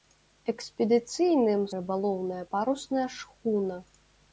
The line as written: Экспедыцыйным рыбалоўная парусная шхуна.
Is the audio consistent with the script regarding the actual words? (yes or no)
yes